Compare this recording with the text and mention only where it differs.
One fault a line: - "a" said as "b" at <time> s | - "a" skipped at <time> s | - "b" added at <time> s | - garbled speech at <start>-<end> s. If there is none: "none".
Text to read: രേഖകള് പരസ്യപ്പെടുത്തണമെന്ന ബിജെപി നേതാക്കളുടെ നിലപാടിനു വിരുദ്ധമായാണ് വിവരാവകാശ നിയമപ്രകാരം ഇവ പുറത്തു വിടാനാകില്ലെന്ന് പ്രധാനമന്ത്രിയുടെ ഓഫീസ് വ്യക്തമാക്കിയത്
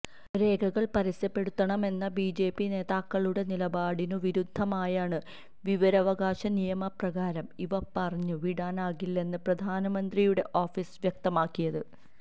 none